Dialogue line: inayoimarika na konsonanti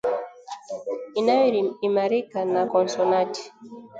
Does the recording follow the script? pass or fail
pass